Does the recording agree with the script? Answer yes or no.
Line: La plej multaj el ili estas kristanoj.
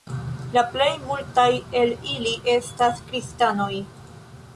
yes